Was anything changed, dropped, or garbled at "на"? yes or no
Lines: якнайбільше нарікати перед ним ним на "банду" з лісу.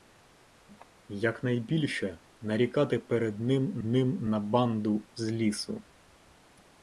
no